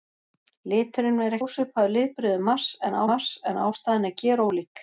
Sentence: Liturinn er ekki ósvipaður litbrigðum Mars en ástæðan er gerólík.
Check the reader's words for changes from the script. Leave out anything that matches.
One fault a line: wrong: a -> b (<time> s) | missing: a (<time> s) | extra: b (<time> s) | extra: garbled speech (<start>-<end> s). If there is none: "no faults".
missing: ekki (1.4 s)
extra: Mars en (3.1 s)